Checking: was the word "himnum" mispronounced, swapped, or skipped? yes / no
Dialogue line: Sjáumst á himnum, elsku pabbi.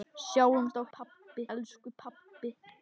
yes